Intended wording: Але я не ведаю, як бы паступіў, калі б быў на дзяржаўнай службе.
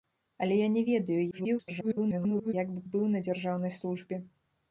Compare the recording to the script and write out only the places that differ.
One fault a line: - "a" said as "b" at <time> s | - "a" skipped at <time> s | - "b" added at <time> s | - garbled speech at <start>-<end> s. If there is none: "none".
- garbled speech at 1.3-2.5 s
- "паступіў калі" skipped at 2.8 s